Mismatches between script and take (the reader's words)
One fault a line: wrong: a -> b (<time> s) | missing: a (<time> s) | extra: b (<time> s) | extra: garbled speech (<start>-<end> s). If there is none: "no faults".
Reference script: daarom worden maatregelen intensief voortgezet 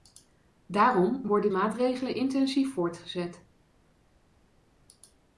no faults